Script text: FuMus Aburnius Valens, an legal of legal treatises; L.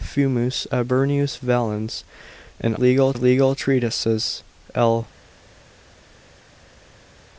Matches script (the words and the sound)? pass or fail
pass